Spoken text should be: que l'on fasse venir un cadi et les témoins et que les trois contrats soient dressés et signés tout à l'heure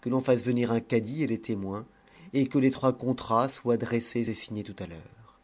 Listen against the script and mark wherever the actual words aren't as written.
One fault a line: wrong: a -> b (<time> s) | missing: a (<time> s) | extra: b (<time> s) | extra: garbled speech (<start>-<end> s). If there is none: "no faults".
no faults